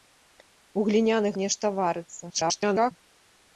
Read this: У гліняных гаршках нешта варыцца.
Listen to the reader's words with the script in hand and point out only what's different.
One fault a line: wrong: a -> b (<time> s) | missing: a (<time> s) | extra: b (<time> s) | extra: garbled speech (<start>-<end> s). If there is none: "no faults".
missing: гаршках (1.3 s)
extra: garbled speech (2.3-2.9 s)